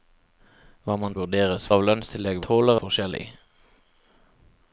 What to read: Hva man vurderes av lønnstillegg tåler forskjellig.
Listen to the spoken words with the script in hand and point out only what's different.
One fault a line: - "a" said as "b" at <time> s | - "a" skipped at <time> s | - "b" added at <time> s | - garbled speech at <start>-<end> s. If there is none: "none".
none